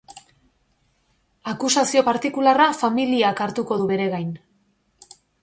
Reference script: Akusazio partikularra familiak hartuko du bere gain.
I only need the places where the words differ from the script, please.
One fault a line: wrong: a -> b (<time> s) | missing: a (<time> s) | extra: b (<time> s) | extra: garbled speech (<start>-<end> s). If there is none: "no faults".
no faults